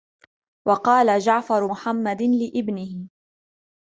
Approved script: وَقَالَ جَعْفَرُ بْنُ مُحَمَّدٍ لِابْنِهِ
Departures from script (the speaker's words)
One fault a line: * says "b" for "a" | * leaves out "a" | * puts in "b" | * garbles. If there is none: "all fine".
* leaves out "بْنُ"